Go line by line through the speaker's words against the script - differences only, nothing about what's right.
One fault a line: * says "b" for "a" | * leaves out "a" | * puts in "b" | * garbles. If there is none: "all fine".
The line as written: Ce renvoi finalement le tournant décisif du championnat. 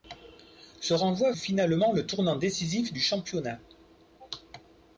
all fine